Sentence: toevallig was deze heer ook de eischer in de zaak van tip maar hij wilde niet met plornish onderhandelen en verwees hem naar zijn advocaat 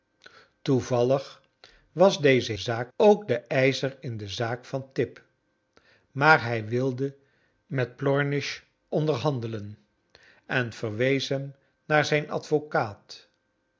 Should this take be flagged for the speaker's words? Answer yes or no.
yes